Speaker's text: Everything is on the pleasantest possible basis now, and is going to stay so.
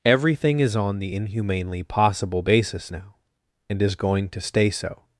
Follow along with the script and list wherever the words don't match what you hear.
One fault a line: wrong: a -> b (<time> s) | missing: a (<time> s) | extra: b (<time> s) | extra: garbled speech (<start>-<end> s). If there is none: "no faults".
wrong: pleasantest -> inhumanely (1.1 s)